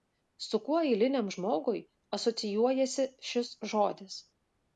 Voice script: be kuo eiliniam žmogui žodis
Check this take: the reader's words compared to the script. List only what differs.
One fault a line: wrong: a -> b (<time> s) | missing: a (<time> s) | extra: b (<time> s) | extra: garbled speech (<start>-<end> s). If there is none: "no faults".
wrong: be -> su (0.4 s)
extra: asocijuojasi šis (2.2 s)